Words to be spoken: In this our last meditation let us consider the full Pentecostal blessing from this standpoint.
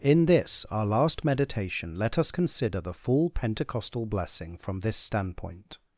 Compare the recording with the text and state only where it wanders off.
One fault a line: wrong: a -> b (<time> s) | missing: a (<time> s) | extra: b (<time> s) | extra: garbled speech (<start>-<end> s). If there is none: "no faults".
no faults